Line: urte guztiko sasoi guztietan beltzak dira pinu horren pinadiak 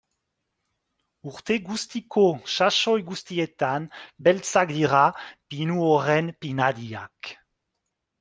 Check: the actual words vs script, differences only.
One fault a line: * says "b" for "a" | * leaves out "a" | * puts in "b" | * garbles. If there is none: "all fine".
all fine